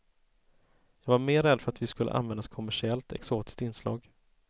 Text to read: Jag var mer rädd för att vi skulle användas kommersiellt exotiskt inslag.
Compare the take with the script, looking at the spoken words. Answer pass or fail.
pass